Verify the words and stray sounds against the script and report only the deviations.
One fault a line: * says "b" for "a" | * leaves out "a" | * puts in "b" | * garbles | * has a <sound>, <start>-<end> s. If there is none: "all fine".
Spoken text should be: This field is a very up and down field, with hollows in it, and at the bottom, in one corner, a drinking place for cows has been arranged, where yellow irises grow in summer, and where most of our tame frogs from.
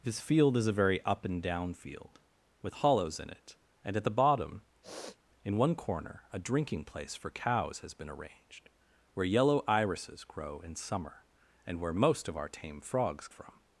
* has a sniff, 4.8-5.2 s